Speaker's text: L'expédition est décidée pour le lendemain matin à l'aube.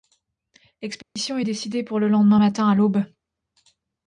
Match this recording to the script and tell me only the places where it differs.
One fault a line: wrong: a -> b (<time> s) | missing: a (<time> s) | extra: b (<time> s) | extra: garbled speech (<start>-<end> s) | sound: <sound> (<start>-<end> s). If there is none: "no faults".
sound: dropout (1.0-1.2 s)